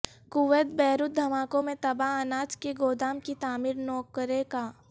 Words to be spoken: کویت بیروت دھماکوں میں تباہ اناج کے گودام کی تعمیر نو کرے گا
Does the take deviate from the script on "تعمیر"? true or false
false